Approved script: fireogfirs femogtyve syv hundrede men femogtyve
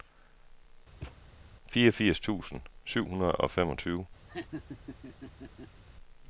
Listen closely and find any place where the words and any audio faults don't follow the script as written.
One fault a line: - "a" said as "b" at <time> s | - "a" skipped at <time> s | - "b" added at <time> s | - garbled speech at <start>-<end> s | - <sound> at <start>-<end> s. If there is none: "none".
- thud at 1.0-1.2 s
- "femogtyve" said as "tusind" at 2.2 s
- "men" said as "og" at 3.3 s
- laugh at 4.3-5.8 s